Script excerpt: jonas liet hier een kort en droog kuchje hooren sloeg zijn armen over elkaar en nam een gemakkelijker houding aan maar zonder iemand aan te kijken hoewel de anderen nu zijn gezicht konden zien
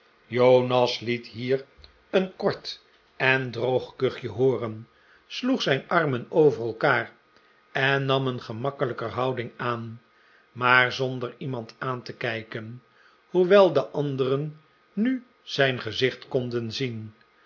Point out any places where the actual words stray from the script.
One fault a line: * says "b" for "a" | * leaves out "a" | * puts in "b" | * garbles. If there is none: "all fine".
all fine